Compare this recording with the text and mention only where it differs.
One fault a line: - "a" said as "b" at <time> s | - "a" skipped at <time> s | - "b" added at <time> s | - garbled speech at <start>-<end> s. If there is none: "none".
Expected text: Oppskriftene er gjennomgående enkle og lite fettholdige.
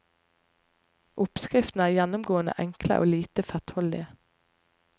none